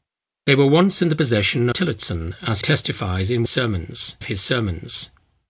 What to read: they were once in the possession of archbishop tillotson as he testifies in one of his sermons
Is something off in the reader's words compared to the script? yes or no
yes